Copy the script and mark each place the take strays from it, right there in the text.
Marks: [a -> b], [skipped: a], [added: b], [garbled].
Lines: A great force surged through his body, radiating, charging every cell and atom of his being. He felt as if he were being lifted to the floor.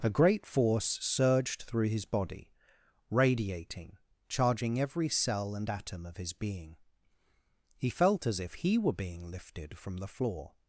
A great force surged through his body, radiating, charging every cell and atom of his being. He felt as if he were being lifted [to -> from] the floor.